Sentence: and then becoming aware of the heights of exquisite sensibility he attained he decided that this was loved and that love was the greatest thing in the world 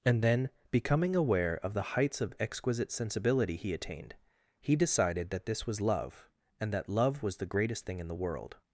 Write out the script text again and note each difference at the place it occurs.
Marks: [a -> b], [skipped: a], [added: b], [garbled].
and then becoming aware of the heights of exquisite sensibility he attained he decided that this was [loved -> love] and that love was the greatest thing in the world